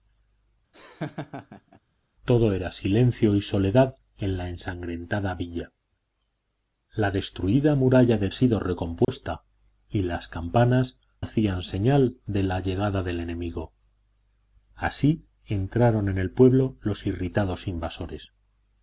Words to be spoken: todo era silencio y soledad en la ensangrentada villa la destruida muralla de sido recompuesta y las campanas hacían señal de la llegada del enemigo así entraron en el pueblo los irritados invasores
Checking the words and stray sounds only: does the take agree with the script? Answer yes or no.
no